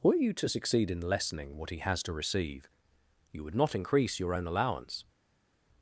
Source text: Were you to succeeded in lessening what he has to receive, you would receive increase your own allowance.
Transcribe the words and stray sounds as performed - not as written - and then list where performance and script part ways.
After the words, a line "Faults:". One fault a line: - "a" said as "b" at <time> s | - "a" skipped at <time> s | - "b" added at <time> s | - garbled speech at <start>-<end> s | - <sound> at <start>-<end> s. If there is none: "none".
Were you to succeed in lessening what he has to receive, you would not increase your own allowance.
Faults:
- "succeeded" said as "succeed" at 0.5 s
- "receive" said as "not" at 3.6 s